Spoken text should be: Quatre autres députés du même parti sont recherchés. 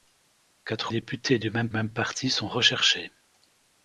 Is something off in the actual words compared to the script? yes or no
yes